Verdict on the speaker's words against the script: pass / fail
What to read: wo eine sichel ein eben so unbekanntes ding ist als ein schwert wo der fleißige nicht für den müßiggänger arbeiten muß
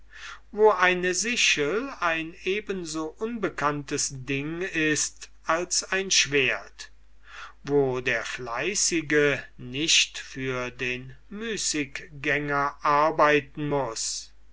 pass